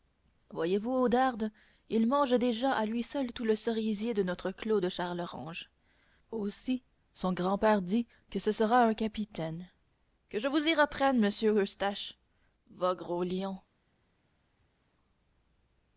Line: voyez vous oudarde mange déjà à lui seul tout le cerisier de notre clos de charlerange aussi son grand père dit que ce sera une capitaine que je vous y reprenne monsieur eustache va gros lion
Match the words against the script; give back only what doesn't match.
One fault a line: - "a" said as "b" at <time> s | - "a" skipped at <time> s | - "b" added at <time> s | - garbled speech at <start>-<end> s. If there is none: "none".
- "il" added at 1.9 s
- "une" said as "un" at 8.8 s